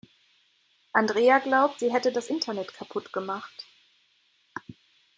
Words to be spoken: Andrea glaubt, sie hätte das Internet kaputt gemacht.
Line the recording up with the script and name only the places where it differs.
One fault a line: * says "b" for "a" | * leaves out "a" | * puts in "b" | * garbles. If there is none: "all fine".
all fine